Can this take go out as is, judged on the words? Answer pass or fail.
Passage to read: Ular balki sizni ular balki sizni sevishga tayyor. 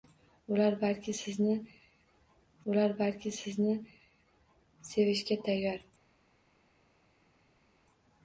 pass